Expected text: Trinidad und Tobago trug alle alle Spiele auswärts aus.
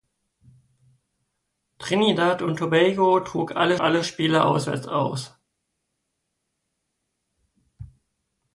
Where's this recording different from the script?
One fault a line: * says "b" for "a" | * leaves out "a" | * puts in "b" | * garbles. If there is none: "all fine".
all fine